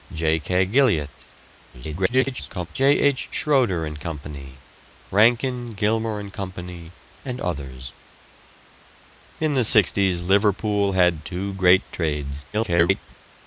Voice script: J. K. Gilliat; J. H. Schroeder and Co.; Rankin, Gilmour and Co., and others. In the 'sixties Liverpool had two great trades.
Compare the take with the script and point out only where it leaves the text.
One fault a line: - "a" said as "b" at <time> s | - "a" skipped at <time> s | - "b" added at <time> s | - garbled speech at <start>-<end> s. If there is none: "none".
- garbled speech at 1.7-2.7 s
- garbled speech at 12.5-13.1 s